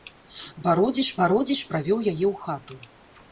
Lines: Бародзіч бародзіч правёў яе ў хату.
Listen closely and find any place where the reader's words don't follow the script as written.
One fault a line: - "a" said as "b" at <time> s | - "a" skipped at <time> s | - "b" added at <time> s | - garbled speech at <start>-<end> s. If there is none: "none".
none